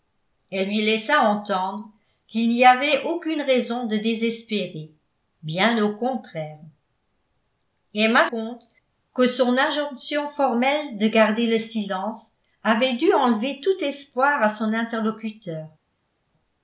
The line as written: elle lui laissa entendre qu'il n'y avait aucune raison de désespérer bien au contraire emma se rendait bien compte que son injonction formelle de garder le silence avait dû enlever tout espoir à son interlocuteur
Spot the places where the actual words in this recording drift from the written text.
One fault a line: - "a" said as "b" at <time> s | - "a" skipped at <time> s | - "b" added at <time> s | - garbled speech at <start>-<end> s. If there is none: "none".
- "se rendait bien" skipped at 8.2 s